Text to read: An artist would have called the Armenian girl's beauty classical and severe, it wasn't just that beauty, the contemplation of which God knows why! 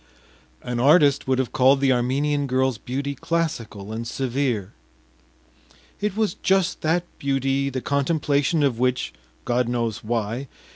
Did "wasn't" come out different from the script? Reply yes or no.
yes